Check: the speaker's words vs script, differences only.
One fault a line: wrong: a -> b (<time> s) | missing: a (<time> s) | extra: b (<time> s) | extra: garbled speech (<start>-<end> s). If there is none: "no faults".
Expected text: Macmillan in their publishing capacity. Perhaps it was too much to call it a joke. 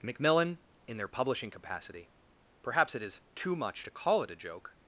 wrong: was -> is (3.0 s)